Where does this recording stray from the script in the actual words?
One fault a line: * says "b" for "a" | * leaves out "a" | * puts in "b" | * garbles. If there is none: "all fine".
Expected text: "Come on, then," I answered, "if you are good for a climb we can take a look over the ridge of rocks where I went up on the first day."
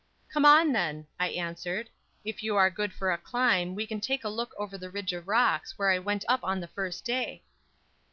all fine